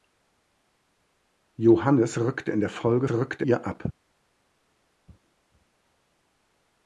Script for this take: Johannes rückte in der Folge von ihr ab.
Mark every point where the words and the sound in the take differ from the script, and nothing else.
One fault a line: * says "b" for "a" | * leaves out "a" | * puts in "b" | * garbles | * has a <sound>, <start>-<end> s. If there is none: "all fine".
* says "rückte" for "von"